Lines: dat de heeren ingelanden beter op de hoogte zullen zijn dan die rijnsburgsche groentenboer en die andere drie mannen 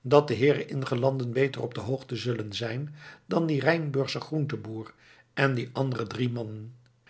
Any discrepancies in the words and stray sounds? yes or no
no